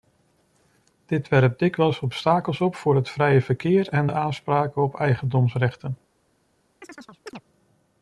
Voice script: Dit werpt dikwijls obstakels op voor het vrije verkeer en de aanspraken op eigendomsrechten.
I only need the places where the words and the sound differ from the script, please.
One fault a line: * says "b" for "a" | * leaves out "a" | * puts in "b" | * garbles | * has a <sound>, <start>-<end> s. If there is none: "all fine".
* has a chirp, 6.8-7.4 s